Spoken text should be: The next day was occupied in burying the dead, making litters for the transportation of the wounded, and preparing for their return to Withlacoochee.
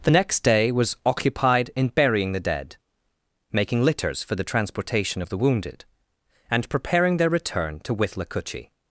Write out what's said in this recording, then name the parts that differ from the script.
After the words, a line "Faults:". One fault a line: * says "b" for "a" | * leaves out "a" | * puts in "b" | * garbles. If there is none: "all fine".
The next day was occupied in burying the dead, making litters for the transportation of the wounded, and preparing their return to Withlacoochee.
Faults:
* leaves out "for"